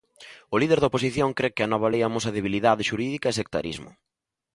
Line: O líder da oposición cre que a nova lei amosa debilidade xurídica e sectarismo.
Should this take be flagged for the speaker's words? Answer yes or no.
no